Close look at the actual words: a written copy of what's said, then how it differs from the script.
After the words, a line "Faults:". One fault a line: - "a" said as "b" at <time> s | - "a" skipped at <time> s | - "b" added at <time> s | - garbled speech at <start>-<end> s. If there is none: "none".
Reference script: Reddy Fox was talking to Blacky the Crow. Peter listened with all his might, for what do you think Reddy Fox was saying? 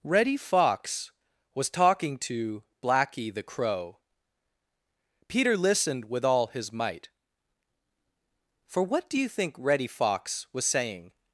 Reddy Fox was talking to Blacky the Crow. Peter listened with all his might, for what do you think Reddy Fox was saying?
Faults:
none